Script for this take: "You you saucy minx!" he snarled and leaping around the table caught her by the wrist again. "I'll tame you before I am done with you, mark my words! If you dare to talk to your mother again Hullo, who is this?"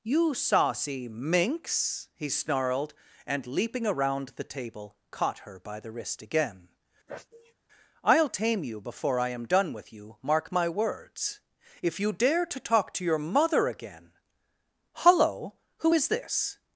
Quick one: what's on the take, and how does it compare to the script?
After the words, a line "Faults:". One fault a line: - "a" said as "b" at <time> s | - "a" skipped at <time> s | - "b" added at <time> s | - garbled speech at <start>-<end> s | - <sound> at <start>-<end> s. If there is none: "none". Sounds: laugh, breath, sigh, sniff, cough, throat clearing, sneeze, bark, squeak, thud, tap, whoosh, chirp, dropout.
"You saucy minx!" he snarled and leaping around the table caught her by the wrist again. "I'll tame you before I am done with you, mark my words! If you dare to talk to your mother again Hullo, who is this?"
Faults:
- "you" skipped at 0.3 s
- sneeze at 7.1-7.5 s